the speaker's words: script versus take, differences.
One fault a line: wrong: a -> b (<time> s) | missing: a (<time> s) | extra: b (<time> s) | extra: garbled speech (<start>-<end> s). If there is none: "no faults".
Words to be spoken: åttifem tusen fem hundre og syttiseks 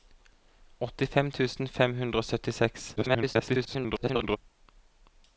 extra: garbled speech (3.0-4.4 s)